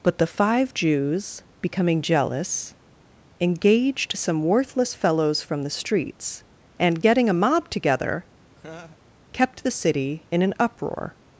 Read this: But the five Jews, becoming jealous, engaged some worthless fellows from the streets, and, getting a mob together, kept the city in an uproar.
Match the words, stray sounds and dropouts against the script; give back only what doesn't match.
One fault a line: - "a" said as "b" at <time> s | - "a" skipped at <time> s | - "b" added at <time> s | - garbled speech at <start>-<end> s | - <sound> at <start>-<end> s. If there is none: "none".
- laugh at 8.5-9.0 s